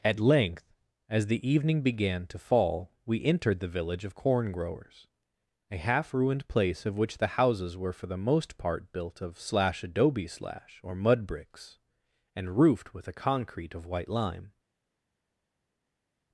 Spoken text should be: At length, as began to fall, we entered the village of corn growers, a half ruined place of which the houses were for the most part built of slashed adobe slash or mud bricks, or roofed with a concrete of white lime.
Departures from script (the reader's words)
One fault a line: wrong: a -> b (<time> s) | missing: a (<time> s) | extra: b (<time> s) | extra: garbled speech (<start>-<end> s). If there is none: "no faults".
extra: the evening (1.3 s)
wrong: slashed -> slash (9.4 s)
wrong: or -> and (12.3 s)